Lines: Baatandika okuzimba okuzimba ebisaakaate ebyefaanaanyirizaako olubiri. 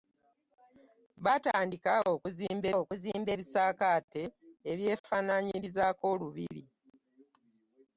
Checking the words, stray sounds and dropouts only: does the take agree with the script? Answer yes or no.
yes